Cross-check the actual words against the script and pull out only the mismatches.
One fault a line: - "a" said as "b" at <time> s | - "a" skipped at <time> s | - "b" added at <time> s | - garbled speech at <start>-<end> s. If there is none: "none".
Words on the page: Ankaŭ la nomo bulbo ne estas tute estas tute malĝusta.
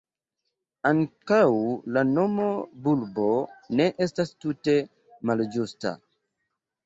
- "estas tute" skipped at 4.8 s